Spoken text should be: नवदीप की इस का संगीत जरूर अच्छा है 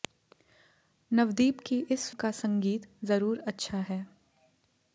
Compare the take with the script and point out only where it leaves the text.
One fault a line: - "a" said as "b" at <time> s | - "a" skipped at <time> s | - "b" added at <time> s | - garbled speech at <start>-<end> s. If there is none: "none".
none